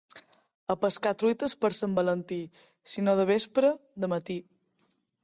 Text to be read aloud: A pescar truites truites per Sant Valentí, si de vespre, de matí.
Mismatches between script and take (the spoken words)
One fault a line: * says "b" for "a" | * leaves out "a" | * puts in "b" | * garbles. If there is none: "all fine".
* leaves out "truites"
* puts in "no"